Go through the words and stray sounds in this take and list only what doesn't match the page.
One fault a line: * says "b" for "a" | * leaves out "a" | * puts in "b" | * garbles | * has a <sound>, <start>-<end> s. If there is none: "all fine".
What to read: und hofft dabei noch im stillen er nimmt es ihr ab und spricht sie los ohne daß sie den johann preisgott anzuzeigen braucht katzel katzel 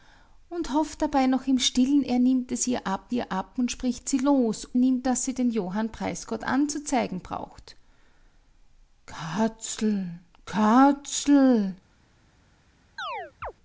* puts in "ihr ab"
* says "nimmt" for "ohne"
* has a chirp, 13.0-13.5 s